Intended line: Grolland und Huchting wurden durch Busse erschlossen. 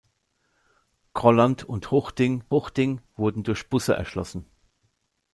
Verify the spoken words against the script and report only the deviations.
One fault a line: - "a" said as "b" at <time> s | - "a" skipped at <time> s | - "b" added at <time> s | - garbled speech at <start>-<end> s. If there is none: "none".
- "Huchting" added at 2.5 s